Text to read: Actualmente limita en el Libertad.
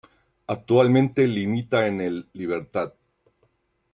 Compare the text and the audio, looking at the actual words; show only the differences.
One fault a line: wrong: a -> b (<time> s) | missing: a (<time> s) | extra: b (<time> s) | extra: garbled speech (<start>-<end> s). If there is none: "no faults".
no faults